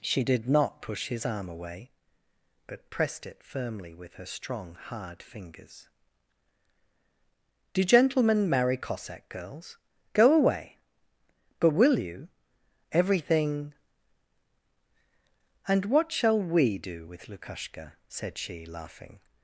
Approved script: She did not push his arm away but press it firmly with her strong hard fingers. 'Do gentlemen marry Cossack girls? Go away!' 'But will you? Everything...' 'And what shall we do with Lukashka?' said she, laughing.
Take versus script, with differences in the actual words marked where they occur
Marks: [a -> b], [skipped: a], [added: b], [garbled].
She did not push his arm away but [press -> pressed] it firmly with her strong hard fingers. 'Do gentlemen marry Cossack girls? Go away!' 'But will you? Everything...' 'And what shall we do with Lukashka?' said she, laughing.